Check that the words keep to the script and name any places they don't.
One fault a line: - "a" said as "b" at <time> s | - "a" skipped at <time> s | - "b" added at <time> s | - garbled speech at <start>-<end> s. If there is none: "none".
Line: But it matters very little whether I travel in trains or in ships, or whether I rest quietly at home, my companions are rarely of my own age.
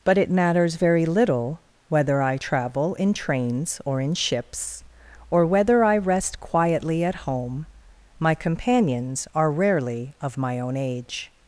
none